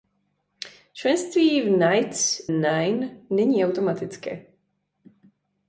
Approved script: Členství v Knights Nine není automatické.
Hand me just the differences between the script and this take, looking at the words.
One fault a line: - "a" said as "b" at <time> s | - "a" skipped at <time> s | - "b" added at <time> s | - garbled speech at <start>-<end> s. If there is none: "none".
none